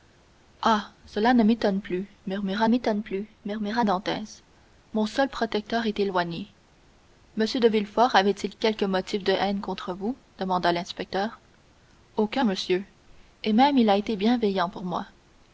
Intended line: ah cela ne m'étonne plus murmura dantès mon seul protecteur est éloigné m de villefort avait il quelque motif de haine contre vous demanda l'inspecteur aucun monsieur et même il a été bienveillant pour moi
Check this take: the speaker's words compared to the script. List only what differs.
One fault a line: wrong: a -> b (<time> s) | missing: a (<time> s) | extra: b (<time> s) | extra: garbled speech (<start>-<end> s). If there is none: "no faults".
extra: m'étonne plus murmura (2.7 s)